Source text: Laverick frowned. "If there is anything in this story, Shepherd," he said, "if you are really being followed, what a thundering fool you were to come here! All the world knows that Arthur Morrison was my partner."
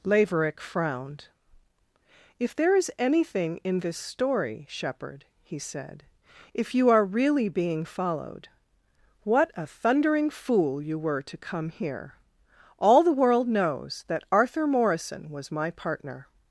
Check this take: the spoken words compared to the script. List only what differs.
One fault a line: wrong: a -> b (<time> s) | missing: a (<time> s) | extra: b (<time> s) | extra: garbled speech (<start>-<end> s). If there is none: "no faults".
no faults